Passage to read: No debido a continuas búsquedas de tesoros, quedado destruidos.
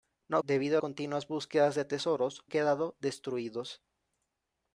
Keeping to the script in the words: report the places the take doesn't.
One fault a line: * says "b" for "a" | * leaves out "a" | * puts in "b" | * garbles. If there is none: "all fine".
all fine